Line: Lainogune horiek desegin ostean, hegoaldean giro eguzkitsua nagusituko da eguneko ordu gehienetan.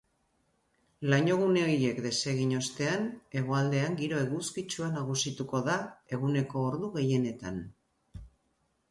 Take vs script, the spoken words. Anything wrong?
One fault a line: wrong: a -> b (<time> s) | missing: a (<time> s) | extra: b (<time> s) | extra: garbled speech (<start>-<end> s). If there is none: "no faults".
no faults